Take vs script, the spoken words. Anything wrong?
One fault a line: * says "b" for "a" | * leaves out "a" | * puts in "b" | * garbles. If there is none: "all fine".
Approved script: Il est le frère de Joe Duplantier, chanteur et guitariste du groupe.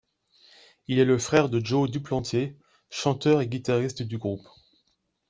all fine